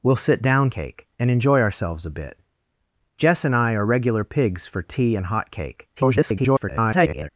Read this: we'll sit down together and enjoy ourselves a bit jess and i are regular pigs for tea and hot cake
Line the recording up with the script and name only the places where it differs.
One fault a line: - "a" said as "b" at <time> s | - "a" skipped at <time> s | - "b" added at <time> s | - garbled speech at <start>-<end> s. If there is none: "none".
- "together" said as "cake" at 0.7 s
- garbled speech at 6.0-7.3 s